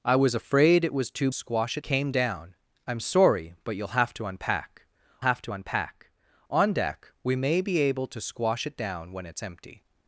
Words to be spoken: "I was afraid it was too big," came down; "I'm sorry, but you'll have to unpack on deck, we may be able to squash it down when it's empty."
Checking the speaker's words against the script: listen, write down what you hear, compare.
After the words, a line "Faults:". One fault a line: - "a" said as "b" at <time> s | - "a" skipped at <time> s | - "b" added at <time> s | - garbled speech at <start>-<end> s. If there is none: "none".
"I was afraid it was too squash," came down; "I'm sorry, but you'll have to unpack have to unpack on deck, we may be able to squash it down when it's empty."
Faults:
- "big" said as "squash" at 1.3 s
- "have to unpack" added at 5.2 s